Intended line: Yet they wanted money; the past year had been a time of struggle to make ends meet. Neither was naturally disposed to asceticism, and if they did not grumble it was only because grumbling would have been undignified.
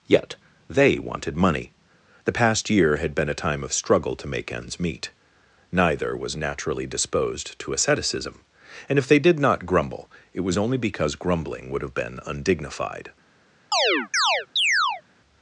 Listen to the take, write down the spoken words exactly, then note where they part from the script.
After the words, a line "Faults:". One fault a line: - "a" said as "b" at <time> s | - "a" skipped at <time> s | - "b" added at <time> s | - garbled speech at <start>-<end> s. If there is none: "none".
Yet they wanted money; the past year had been a time of struggle to make ends meet. Neither was naturally disposed to asceticism, and if they did not grumble it was only because grumbling would have been undignified.
Faults:
none